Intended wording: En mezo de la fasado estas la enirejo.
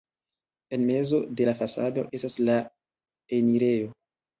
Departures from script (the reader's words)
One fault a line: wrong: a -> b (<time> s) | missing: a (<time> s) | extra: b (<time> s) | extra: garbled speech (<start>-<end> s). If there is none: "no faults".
no faults